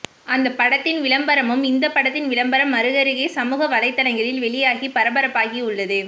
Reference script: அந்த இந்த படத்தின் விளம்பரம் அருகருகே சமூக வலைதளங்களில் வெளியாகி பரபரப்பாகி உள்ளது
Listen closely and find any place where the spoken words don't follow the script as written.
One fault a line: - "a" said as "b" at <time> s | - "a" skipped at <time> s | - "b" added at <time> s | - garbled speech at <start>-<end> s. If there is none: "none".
- "படத்தின் விளம்பரமும்" added at 0.5 s